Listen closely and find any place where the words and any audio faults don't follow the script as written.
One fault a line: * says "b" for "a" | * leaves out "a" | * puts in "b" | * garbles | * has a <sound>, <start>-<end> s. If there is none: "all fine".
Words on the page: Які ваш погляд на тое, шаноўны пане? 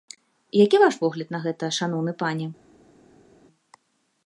* says "гэта" for "тое"